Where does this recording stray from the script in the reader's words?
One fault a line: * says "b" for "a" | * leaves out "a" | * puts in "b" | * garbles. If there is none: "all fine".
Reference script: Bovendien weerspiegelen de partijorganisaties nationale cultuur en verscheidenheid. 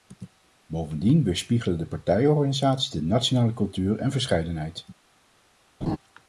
* puts in "de"